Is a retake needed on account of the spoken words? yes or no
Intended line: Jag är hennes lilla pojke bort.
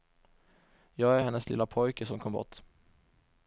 yes